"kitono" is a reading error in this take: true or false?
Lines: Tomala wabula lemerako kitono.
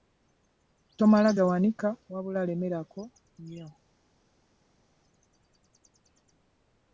true